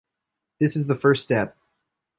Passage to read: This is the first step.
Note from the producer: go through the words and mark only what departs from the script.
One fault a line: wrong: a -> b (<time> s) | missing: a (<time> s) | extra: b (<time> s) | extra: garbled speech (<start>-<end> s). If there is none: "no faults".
no faults